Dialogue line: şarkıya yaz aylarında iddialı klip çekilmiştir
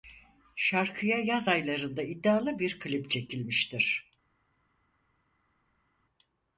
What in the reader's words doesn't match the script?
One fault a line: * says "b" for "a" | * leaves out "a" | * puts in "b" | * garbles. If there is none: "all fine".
* puts in "bir"